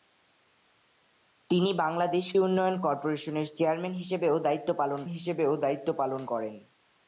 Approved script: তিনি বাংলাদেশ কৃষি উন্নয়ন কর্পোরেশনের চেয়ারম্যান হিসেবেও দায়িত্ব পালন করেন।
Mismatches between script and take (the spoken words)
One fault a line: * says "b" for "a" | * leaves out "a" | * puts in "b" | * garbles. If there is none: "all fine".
* leaves out "কৃষি"
* puts in "হিসেবেও দায়িত্ব পালন"